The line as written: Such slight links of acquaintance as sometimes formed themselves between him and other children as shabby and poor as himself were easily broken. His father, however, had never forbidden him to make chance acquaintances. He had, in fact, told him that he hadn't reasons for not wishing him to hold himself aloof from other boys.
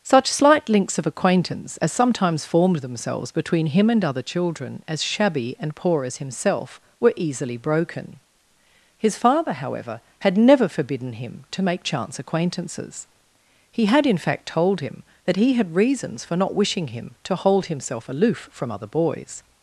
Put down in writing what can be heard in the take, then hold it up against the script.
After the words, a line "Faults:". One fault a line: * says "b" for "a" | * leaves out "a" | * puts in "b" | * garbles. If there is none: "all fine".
Such slight links of acquaintance as sometimes formed themselves between him and other children as shabby and poor as himself were easily broken. His father, however, had never forbidden him to make chance acquaintances. He had, in fact, told him that he had reasons for not wishing him to hold himself aloof from other boys.
Faults:
* says "had" for "hadn't"